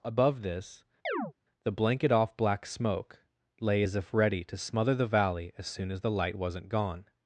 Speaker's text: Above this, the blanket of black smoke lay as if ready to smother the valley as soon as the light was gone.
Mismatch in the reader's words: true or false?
true